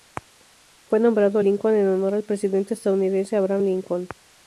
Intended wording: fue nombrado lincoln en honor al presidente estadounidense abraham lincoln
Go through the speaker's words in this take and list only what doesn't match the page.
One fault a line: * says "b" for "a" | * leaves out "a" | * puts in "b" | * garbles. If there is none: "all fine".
all fine